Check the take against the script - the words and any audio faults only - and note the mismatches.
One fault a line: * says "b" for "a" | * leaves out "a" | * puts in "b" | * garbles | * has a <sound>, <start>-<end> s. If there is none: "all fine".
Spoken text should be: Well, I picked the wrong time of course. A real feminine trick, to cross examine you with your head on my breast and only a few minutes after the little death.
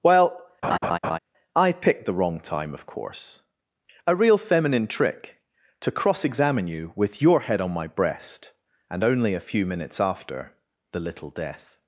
* has a laugh, 0.6-1.2 s